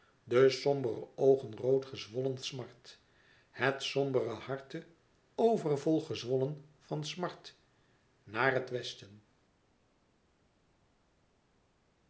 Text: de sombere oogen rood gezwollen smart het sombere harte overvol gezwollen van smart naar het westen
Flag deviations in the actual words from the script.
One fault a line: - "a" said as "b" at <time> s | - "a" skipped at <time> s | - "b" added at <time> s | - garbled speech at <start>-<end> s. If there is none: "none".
none